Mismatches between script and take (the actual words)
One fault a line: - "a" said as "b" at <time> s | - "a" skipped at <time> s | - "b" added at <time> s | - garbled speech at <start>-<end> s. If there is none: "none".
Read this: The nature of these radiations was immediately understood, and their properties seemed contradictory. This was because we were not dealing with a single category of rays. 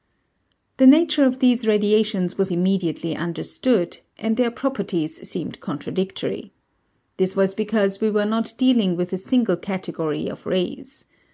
none